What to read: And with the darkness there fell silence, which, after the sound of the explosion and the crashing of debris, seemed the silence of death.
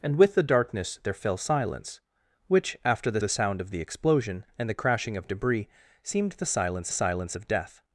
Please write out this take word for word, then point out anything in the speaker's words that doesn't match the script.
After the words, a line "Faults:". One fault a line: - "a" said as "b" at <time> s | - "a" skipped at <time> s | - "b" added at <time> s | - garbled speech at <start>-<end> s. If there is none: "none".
And with the darkness there fell silence, which, after the the sound of the explosion and the crashing of debris, seemed the silence silence of death.
Faults:
- "the" added at 3.2 s
- "silence" added at 6.9 s